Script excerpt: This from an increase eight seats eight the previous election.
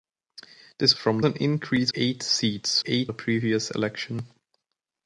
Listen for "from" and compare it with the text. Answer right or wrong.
right